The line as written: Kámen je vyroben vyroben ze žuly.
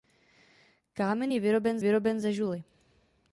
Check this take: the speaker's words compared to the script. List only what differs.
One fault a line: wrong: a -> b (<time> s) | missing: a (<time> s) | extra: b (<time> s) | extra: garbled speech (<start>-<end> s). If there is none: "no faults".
no faults